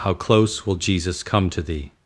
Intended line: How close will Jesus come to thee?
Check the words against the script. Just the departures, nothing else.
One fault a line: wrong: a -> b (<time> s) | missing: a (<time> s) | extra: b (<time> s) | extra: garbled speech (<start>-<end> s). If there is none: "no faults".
no faults